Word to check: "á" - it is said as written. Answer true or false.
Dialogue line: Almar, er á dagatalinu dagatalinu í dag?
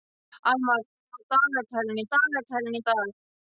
true